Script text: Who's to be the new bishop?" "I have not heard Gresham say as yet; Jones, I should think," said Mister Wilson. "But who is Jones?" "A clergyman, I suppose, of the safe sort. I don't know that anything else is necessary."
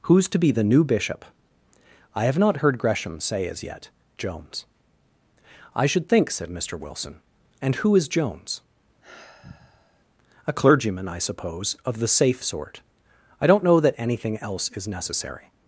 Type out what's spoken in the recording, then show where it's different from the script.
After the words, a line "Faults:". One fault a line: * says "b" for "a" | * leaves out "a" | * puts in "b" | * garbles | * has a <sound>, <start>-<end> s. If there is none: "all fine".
Who's to be the new bishop?" "I have not heard Gresham say as yet; Jones, I should think," said Mister Wilson. "And who is Jones?" "A clergyman, I suppose, of the safe sort. I don't know that anything else is necessary."
Faults:
* says "And" for "But"
* has a sigh, 9.0-10.0 s